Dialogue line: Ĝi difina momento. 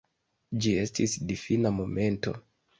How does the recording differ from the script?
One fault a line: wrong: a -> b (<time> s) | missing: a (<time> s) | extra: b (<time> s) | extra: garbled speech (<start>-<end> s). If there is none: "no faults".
extra: estis (0.8 s)